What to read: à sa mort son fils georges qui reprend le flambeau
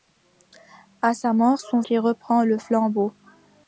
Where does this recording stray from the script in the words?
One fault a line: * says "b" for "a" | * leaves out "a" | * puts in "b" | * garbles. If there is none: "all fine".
* leaves out "fils georges"